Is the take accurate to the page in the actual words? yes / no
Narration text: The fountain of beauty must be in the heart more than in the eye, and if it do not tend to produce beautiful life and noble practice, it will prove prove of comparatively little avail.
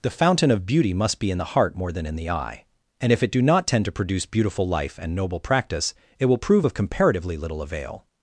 no